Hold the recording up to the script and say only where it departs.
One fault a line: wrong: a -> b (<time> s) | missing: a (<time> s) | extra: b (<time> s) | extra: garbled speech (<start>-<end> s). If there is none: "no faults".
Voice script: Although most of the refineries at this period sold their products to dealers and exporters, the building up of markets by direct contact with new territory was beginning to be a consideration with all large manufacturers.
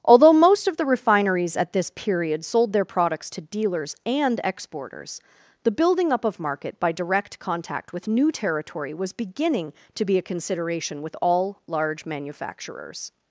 wrong: markets -> market (6.4 s)